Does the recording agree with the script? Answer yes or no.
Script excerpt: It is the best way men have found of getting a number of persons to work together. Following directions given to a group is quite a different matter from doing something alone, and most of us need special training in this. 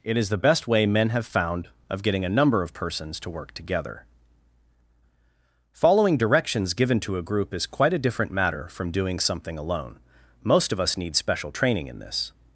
no